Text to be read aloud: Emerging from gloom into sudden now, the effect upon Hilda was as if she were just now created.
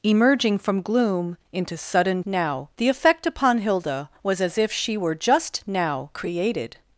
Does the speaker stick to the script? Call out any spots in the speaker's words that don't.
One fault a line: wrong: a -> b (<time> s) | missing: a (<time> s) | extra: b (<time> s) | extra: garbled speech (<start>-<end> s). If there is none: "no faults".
no faults